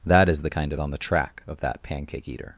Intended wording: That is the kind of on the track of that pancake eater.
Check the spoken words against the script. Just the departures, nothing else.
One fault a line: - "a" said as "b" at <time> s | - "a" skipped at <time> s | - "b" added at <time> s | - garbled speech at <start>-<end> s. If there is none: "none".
none